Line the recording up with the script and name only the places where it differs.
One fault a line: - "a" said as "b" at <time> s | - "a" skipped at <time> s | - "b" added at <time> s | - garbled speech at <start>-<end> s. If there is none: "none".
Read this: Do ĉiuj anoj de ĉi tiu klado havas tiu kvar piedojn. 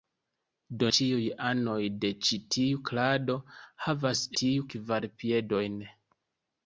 none